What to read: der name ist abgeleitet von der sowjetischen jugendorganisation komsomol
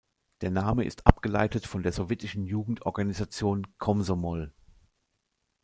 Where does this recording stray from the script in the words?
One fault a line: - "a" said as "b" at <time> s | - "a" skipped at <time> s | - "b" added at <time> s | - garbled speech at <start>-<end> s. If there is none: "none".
none